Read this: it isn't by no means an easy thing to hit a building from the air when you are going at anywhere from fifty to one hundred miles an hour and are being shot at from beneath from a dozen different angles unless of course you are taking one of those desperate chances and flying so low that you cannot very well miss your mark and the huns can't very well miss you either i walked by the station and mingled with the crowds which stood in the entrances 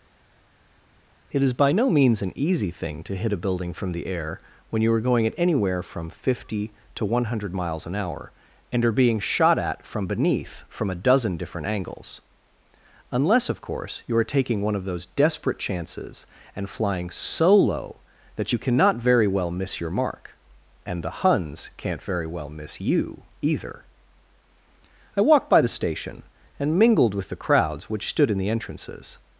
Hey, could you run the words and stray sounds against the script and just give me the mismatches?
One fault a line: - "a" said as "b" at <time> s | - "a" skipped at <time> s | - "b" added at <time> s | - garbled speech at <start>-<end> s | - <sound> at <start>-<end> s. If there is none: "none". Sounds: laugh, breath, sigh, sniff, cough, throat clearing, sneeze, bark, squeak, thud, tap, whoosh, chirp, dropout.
- "isn't" said as "is" at 1.4 s